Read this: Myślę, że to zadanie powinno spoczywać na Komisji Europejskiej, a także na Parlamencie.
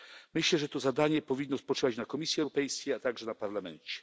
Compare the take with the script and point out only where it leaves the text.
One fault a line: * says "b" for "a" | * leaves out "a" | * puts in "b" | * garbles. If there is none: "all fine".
all fine